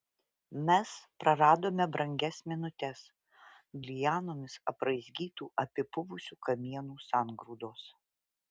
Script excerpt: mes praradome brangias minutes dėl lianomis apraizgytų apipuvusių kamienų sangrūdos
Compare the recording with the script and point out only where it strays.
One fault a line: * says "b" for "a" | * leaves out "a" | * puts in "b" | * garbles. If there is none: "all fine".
* leaves out "dėl"